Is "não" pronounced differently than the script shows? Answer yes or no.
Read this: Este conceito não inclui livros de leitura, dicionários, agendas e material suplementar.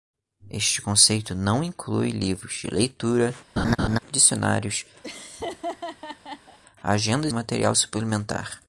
no